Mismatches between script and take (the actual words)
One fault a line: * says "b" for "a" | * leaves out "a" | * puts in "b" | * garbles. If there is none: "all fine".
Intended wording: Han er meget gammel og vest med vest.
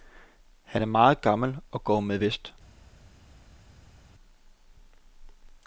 * says "går" for "vest"